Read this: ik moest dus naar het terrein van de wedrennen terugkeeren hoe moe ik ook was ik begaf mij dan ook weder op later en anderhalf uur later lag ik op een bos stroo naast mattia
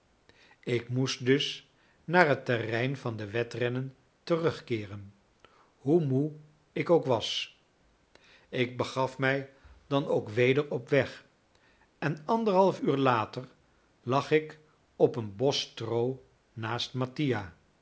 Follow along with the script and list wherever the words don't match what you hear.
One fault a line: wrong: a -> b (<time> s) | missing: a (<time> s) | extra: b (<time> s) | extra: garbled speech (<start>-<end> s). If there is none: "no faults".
wrong: later -> weg (10.9 s)